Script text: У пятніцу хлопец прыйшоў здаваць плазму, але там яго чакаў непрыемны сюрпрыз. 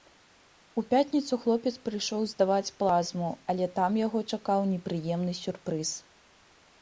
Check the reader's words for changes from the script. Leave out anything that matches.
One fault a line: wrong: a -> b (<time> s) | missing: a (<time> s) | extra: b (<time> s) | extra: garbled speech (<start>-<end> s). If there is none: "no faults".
no faults